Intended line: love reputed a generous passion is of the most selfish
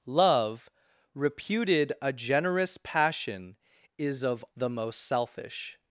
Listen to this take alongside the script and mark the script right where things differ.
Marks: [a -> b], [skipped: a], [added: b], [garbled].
love reputed a generous passion is of the most selfish